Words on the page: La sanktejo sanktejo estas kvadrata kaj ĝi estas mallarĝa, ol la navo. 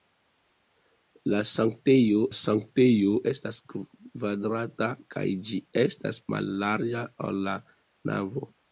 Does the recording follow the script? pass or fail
pass